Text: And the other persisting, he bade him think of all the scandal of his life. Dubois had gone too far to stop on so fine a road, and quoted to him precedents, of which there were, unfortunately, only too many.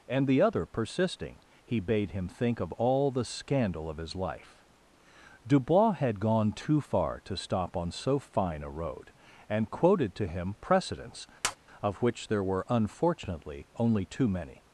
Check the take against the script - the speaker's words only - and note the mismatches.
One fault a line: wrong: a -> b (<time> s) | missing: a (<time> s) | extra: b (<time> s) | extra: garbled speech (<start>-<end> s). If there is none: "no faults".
no faults